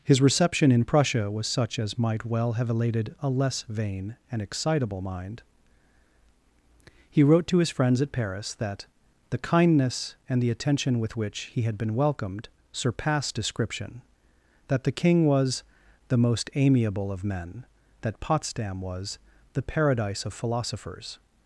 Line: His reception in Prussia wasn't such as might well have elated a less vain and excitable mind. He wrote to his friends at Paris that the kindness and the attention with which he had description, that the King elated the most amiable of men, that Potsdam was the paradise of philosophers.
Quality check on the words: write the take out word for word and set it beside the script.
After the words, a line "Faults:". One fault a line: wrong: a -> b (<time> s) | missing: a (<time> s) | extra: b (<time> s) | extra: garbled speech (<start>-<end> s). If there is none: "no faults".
His reception in Prussia was such as might well have elated a less vain and excitable mind. He wrote to his friends at Paris that the kindness and the attention with which he had been welcomed surpassed description, that the King was the most amiable of men, that Potsdam was the paradise of philosophers.
Faults:
wrong: wasn't -> was (1.3 s)
extra: been welcomed surpassed (11.8 s)
wrong: elated -> was (15.2 s)